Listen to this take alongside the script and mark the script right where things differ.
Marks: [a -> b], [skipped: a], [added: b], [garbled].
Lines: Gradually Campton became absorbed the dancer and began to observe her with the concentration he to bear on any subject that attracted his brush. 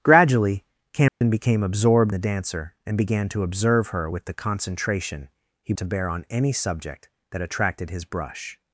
Gradually Campton became absorbed the dancer and began to observe her with the concentration he to bear on any subject that attracted his brush.